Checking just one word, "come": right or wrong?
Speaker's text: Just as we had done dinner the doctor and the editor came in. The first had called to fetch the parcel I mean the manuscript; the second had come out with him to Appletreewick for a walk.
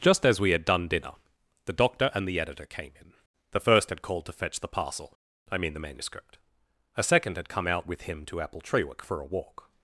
right